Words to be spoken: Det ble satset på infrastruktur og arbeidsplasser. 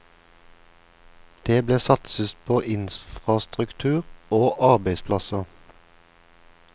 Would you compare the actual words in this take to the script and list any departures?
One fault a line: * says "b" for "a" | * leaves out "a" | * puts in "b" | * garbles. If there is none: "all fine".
all fine